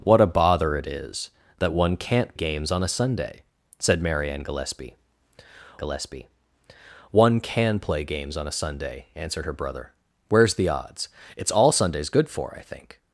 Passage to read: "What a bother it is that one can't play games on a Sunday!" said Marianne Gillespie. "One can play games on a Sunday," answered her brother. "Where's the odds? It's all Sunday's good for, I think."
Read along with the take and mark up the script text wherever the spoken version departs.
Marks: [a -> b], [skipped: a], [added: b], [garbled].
"What a bother it is that one can't [skipped: play] games on a Sunday!" said Marianne Gillespie. [added: Gillespie] "One can play games on a Sunday," answered her brother. "Where's the odds? It's all Sunday's good for, I think."